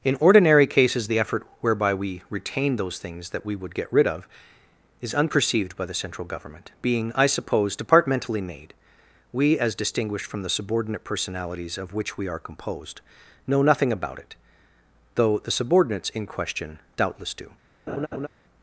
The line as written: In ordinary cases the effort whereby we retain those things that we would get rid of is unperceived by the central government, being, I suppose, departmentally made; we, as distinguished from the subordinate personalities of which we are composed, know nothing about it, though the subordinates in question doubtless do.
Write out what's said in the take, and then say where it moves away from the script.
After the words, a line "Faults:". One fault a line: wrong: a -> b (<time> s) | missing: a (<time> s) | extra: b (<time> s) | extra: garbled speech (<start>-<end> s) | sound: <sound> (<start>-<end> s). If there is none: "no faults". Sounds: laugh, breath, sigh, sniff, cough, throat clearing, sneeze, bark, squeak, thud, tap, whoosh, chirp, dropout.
In ordinary cases the effort whereby we retain those things that we would get rid of is unperceived by the central government, being, I suppose, departmentally made; we, as distinguished from the subordinate personalities of which we are composed, know nothing about it, though the subordinates in question doubtless do.
Faults:
sound: laugh (17.9-18.3 s)